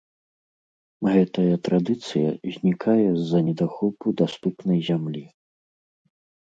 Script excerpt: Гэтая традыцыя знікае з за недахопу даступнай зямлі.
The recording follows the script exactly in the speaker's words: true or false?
true